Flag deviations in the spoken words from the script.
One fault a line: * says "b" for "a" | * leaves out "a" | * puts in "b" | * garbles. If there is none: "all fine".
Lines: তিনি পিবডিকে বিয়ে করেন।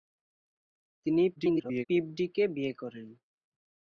* garbles